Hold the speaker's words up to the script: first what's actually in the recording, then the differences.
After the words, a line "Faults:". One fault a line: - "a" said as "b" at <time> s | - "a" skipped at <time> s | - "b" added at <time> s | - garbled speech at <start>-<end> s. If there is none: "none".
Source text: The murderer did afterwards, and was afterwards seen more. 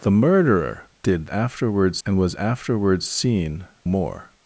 The murderer did afterwards, and was afterwards seen more.
Faults:
none